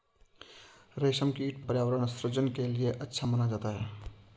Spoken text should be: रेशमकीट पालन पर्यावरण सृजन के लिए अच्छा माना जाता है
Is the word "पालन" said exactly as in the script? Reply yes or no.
no